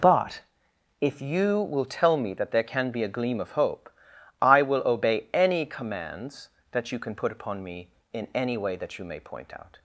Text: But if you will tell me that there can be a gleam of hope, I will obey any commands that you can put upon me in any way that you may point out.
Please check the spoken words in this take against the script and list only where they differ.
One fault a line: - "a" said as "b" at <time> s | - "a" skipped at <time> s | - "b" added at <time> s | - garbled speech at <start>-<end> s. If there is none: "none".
none